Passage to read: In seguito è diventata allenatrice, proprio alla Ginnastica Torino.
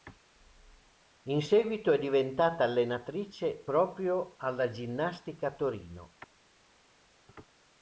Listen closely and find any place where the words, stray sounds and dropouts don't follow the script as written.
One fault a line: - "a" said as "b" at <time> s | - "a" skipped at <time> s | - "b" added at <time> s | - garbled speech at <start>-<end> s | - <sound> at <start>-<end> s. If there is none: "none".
none